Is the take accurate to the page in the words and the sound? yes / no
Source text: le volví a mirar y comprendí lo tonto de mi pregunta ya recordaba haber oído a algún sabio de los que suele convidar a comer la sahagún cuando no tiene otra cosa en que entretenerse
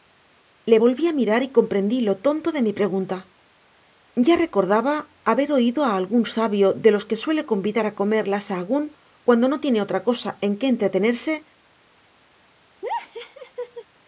no